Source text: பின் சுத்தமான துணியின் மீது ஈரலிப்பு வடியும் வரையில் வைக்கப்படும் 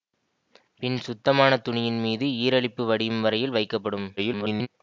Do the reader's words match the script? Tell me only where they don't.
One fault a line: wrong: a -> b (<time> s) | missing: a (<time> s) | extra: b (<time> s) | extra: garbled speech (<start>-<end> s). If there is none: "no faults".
extra: garbled speech (4.2-4.7 s)